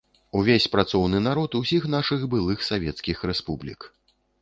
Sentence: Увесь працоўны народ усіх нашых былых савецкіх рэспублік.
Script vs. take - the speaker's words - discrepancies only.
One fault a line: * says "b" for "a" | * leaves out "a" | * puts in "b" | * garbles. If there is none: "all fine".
all fine